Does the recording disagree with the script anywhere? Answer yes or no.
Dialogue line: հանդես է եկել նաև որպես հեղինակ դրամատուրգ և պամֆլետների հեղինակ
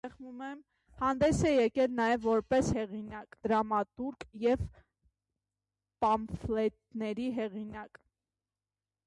no